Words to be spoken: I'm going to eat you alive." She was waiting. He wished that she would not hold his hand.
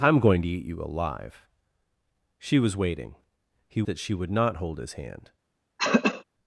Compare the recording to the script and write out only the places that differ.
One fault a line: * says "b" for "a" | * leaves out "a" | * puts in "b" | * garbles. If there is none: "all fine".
* leaves out "wished"